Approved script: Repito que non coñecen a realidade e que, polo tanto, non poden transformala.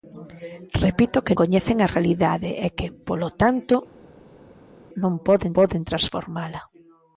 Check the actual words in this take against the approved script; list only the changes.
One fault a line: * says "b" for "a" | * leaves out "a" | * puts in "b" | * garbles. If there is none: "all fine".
* leaves out "non"
* puts in "poden"